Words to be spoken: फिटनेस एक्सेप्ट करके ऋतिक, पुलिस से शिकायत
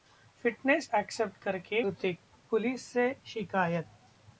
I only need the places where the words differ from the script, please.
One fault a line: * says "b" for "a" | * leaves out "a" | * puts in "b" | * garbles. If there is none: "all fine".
all fine